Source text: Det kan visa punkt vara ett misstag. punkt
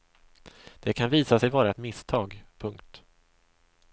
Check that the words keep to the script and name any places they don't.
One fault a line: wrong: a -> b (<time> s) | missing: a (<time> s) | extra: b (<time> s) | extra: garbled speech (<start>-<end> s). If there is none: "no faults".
wrong: punkt -> sig (1.4 s)